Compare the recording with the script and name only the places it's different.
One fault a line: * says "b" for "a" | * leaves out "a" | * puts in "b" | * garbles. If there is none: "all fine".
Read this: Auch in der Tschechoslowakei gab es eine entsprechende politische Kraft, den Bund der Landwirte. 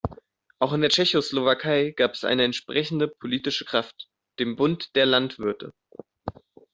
all fine